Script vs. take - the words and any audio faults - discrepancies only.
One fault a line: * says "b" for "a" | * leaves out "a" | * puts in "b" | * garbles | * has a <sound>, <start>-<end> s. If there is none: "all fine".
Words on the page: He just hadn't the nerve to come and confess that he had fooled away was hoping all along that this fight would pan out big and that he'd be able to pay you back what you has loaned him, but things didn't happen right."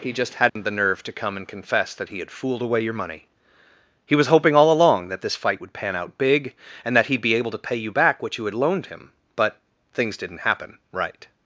* has a dropout, 0.5-0.6 s
* puts in "your money He"
* says "had" for "has"